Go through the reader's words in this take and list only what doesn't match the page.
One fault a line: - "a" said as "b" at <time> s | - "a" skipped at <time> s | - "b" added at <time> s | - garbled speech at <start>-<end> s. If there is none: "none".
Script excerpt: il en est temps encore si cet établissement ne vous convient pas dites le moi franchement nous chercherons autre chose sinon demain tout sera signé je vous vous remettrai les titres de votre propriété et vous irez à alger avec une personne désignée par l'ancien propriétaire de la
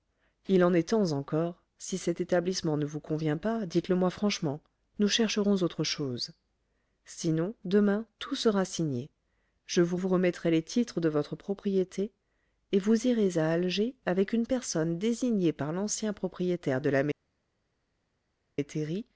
none